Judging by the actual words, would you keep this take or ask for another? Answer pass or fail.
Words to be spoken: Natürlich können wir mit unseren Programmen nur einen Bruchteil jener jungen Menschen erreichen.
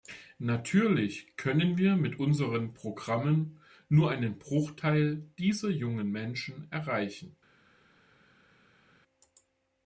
fail